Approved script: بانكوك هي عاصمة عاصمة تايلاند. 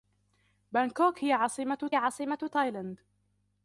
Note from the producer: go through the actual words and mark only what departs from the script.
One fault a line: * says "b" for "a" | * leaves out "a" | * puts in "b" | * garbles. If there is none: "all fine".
all fine